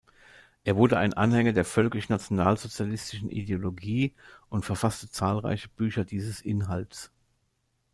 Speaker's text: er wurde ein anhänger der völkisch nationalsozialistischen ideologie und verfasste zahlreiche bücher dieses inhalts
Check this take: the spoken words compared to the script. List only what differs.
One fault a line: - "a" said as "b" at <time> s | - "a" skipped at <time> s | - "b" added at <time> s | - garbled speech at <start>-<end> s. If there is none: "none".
none